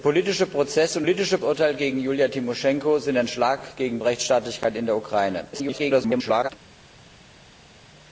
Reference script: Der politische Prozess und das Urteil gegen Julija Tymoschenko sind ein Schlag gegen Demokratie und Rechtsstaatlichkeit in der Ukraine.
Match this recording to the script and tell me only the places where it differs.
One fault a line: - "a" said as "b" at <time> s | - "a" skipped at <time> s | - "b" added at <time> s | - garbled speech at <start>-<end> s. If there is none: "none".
- "das" said as "politische" at 1.0 s
- "Demokratie und" skipped at 4.0 s
- garbled speech at 5.5-6.5 s